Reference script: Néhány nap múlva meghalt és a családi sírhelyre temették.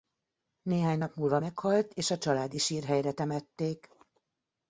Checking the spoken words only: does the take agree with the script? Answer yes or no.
yes